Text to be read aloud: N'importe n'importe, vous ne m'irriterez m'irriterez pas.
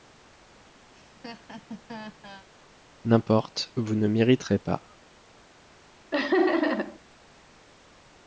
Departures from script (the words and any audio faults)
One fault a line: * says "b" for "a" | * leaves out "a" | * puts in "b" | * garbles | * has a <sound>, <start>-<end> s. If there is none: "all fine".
* has a laugh, 0.9-2.5 s
* leaves out "n'importe"
* leaves out "m'irriterez"
* has a laugh, 6.1-7.0 s